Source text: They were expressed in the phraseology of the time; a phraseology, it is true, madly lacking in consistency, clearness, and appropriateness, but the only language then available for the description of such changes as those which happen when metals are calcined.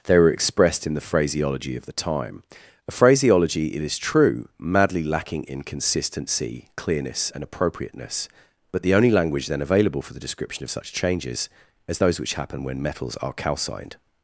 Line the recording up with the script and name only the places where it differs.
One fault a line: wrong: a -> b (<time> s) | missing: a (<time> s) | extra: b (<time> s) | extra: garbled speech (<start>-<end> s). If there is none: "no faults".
no faults